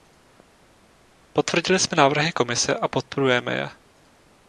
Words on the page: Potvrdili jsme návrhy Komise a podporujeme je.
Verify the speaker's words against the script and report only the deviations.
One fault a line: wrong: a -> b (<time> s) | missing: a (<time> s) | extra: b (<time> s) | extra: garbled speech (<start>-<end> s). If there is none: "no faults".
no faults